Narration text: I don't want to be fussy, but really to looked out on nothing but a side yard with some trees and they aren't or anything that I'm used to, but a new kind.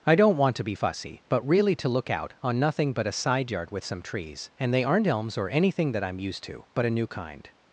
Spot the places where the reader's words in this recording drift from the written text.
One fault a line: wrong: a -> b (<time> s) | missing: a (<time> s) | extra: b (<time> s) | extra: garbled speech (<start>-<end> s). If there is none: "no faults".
wrong: looked -> look (1.9 s)
extra: elms (5.1 s)